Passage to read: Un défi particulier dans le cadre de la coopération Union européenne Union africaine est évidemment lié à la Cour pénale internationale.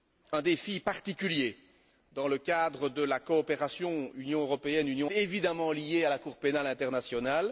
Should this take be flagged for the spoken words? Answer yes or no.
yes